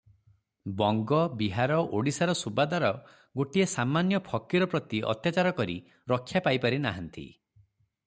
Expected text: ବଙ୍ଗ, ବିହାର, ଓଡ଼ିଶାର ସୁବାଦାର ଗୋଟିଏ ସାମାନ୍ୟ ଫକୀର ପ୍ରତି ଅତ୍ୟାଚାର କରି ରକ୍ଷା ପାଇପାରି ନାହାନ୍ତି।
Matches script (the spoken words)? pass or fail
pass